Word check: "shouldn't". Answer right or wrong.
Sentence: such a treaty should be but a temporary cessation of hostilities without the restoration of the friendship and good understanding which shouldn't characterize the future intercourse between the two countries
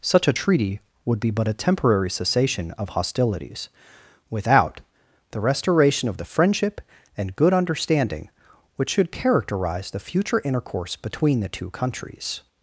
wrong